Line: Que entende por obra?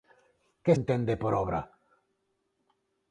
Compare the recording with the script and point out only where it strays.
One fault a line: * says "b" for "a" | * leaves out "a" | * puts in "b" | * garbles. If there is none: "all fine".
all fine